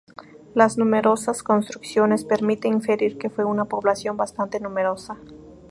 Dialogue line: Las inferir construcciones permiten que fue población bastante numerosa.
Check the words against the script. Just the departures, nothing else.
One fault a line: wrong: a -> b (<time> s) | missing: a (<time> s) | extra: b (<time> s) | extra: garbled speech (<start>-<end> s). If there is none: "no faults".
wrong: inferir -> numerosas (0.8 s)
extra: inferir (2.7 s)
extra: una (3.5 s)